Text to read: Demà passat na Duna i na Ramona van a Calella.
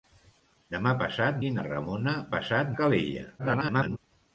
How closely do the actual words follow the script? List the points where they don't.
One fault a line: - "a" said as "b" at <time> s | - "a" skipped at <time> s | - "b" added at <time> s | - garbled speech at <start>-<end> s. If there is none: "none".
- "na Duna" skipped at 1.4 s
- "van" said as "passat" at 2.3 s
- garbled speech at 3.4-4.0 s